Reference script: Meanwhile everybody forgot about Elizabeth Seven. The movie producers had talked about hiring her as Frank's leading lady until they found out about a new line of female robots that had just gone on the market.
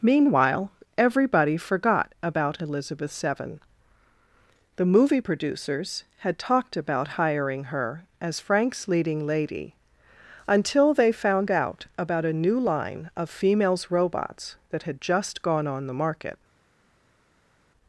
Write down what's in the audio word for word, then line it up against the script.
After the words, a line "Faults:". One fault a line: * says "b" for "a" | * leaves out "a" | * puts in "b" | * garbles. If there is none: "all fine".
Meanwhile everybody forgot about Elizabeth Seven. The movie producers had talked about hiring her as Frank's leading lady until they found out about a new line of females robots that had just gone on the market.
Faults:
* says "females" for "female"